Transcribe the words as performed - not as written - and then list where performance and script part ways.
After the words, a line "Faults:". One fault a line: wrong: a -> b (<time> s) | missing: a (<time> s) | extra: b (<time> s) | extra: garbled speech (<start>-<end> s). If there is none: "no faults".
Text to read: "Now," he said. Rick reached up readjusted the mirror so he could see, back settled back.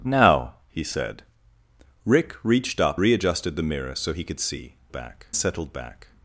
"Now," he said. Rick reached up readjusted the mirror so he could see, back settled back.
Faults:
no faults